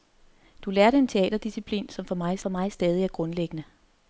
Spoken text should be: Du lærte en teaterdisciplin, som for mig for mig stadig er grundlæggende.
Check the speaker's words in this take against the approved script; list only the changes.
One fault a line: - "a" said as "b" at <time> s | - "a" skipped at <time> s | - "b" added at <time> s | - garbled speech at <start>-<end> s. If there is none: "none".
none